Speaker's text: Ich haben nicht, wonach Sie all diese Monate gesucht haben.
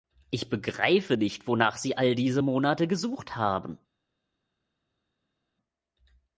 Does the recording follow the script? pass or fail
fail